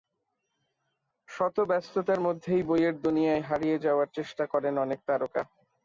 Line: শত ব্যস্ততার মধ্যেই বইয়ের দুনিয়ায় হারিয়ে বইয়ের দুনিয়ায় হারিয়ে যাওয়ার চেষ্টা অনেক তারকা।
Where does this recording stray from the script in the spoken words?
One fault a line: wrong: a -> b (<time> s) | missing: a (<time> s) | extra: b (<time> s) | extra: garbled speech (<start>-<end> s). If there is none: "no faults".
missing: বইয়ের দুনিয়ায় হারিয়ে (3.8 s)
extra: করেন (4.5 s)